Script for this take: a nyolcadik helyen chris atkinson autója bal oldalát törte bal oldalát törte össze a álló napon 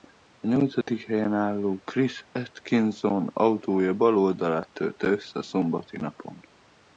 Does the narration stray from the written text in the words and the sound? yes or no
yes